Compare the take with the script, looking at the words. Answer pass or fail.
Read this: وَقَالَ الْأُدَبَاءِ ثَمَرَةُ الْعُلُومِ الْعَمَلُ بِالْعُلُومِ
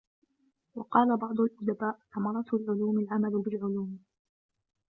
fail